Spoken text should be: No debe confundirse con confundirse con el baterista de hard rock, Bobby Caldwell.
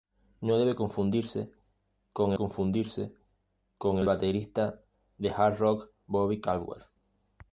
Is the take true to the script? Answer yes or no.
yes